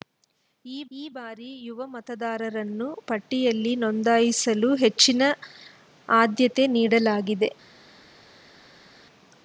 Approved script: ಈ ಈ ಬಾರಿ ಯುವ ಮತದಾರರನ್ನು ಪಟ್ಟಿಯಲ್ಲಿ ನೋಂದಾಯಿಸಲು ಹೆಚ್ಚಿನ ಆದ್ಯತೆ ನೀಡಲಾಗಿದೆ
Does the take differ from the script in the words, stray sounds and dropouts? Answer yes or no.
no